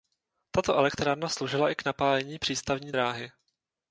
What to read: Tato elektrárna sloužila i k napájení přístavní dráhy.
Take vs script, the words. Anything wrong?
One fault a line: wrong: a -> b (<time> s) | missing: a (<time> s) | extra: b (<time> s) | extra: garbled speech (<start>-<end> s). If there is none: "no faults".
no faults